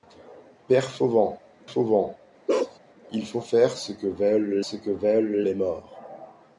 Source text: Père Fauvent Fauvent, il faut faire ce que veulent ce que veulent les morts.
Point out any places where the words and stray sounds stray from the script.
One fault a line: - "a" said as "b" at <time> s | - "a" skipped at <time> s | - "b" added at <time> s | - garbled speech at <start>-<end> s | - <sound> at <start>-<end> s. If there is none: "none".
- bark at 2.5-2.8 s